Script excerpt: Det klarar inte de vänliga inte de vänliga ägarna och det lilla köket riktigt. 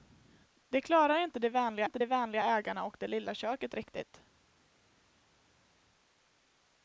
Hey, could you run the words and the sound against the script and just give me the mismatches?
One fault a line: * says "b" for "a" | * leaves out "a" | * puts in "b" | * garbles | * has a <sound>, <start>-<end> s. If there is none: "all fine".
all fine